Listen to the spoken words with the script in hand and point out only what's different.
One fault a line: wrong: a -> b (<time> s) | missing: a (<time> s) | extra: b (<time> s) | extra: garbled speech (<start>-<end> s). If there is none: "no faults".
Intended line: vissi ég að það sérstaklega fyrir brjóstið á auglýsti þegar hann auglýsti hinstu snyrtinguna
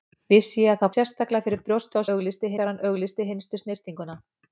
no faults